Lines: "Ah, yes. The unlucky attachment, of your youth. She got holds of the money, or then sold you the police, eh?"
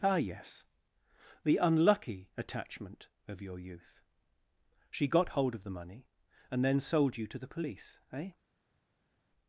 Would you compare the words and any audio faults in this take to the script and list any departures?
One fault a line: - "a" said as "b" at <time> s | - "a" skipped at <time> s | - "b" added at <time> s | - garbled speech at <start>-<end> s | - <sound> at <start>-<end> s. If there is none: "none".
- "holds" said as "hold" at 5.4 s
- "or" said as "and" at 6.5 s
- "to" added at 7.3 s